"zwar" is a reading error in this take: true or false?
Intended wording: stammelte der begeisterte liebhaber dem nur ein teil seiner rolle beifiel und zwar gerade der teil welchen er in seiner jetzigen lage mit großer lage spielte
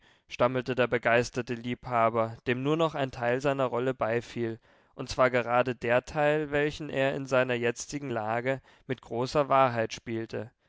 false